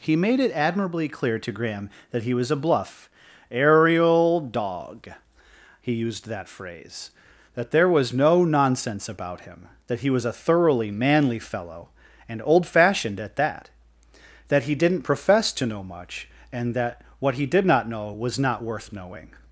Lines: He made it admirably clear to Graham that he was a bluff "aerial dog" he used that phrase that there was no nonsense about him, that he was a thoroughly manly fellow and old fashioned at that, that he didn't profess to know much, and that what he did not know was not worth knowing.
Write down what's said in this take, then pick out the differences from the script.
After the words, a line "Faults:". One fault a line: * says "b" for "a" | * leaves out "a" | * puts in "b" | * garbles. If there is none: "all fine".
He made it admirably clear to Graham that he was a bluff "aerial dog" he used that phrase that there was no nonsense about him, that he was a thoroughly manly fellow and old fashioned at that, that he didn't profess to know much, and that what he did not know was not worth knowing.
Faults:
all fine